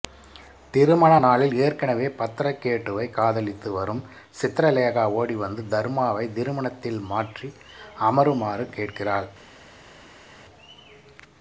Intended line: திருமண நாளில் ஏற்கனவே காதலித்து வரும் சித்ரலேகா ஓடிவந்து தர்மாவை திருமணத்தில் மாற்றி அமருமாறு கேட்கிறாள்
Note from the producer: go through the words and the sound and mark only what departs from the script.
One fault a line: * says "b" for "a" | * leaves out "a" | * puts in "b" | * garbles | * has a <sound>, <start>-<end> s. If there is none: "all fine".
* puts in "பத்ரகேட்டுவை"